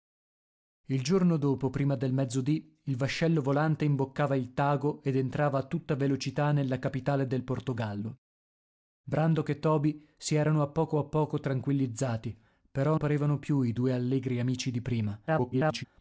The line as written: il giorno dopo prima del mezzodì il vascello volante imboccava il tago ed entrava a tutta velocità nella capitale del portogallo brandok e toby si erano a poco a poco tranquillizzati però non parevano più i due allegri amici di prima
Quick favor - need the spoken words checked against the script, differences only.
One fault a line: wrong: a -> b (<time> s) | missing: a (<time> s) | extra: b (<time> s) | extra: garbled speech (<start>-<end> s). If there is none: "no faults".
missing: non (13.0 s)
extra: garbled speech (15.3-15.8 s)